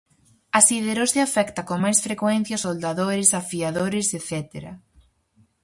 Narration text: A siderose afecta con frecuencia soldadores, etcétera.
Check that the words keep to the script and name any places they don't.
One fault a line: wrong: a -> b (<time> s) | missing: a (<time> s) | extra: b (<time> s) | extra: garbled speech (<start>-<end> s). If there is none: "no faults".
extra: máis (1.8 s)
extra: afiadores (3.4 s)